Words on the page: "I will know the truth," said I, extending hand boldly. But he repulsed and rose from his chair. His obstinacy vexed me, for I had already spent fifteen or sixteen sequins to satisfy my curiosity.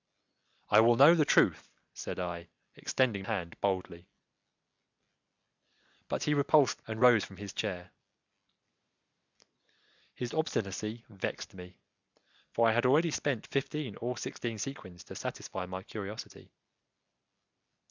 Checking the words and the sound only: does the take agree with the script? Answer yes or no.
yes